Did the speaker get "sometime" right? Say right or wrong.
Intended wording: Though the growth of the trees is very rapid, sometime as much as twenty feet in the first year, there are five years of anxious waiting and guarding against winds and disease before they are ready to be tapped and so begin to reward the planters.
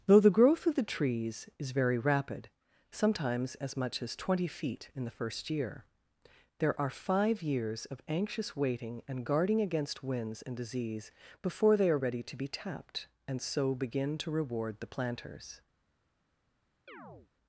wrong